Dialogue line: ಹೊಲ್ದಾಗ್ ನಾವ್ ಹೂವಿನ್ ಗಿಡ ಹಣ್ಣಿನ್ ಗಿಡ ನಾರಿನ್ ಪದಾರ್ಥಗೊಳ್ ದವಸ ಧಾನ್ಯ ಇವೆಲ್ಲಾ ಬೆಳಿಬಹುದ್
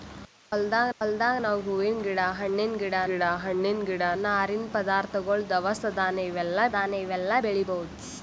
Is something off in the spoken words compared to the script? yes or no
yes